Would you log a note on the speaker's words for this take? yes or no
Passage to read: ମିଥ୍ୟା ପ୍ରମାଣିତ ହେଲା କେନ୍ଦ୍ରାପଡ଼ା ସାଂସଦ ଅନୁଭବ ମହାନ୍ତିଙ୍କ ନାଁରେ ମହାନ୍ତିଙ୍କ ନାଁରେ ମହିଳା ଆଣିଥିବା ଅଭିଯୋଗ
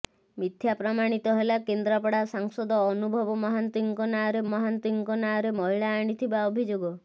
no